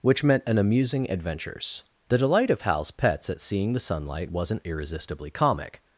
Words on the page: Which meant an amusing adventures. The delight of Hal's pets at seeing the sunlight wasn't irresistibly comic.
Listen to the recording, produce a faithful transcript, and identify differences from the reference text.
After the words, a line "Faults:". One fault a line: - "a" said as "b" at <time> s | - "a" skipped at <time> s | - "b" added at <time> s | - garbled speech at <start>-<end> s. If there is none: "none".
Which meant an amusing adventures. The delight of Hal's pets at seeing the sunlight wasn't irresistibly comic.
Faults:
none